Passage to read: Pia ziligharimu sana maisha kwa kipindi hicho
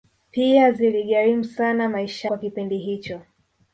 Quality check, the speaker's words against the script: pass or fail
pass